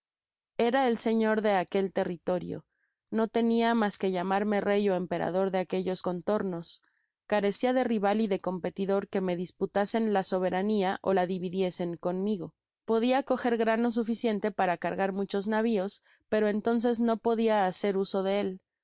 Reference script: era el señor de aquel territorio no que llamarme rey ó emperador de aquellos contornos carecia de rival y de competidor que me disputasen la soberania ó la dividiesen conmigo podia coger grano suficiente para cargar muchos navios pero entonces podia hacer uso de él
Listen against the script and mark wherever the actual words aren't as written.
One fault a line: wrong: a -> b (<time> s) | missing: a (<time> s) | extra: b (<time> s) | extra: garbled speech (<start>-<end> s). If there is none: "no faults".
extra: tenia mas (3.3 s)
extra: no (17.0 s)